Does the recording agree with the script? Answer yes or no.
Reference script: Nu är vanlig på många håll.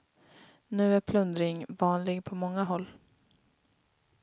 no